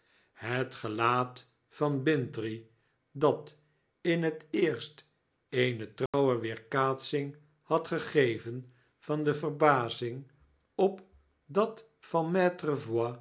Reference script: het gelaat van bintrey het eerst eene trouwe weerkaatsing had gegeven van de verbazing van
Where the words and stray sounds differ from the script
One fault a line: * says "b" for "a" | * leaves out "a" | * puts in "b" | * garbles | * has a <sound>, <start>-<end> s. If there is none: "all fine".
* puts in "dat in"
* has a dropout, 6.1-6.1 s
* puts in "op dat"